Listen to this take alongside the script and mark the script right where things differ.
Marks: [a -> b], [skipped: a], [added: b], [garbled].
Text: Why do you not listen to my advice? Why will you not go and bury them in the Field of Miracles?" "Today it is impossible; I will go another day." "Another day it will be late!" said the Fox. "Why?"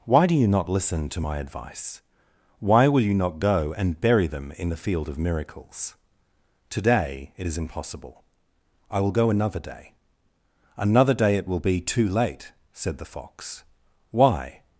Why do you not listen to my advice? Why will you not go and bury them in the Field of Miracles?" "Today it is impossible; I will go another day." "Another day it will be [added: too] late!" said the Fox. "Why?"